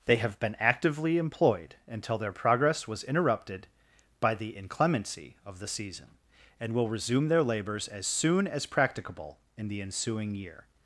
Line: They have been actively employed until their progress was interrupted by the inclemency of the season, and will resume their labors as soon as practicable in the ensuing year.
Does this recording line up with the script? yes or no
yes